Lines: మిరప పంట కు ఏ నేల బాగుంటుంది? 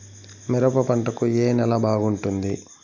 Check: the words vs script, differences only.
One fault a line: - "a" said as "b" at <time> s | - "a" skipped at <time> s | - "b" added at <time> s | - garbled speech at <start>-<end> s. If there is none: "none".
none